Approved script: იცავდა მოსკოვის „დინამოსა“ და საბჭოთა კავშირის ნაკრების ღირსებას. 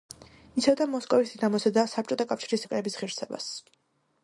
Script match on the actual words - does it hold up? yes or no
yes